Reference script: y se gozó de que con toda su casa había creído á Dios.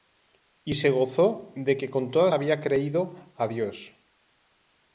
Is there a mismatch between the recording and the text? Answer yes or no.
yes